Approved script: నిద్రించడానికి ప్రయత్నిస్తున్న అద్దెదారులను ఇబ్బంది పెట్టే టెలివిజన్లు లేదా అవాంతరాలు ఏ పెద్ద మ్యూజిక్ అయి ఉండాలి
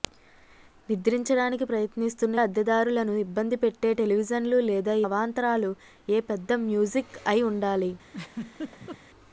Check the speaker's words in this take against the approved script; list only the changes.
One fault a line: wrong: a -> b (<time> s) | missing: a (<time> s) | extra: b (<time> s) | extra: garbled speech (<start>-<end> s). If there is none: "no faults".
no faults